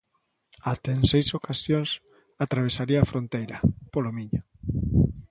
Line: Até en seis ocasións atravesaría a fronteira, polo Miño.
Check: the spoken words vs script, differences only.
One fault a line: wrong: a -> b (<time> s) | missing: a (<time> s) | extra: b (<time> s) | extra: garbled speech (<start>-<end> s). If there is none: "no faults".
no faults